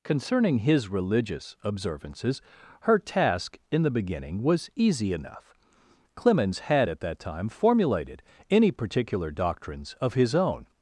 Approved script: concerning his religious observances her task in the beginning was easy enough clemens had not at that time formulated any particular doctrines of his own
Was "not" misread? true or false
true